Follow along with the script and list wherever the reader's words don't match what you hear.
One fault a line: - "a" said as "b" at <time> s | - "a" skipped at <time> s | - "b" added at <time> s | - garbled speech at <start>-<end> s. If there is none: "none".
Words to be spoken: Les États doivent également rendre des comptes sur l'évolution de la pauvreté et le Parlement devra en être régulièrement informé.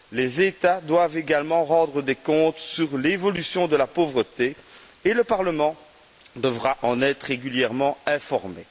none